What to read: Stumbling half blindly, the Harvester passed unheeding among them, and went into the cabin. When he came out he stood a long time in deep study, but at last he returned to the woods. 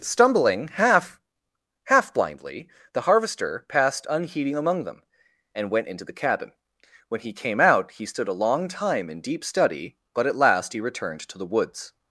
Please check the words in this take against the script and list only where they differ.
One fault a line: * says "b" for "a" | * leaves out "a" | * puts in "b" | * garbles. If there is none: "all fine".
* puts in "half"